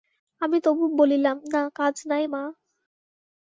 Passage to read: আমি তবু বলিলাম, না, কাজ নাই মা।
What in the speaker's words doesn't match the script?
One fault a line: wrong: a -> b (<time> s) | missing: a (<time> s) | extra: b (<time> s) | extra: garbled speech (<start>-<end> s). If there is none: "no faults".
no faults